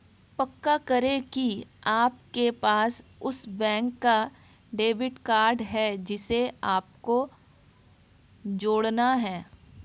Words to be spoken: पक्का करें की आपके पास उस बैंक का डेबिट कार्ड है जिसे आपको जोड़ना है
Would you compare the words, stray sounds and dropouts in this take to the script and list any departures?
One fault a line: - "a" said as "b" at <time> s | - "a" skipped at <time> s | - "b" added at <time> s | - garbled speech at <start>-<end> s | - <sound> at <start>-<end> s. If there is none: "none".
none